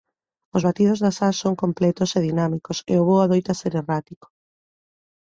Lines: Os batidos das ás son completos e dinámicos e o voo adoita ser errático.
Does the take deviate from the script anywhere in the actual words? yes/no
no